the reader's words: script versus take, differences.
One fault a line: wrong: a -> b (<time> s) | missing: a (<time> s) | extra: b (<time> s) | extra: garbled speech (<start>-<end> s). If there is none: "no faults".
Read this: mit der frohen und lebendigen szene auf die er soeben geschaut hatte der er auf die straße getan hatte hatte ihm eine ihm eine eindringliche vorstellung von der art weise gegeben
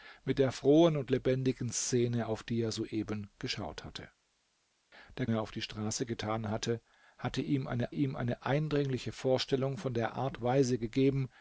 no faults